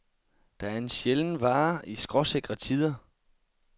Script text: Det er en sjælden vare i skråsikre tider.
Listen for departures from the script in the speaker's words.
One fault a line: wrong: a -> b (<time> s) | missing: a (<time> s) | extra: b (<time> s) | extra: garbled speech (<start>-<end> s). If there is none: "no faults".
no faults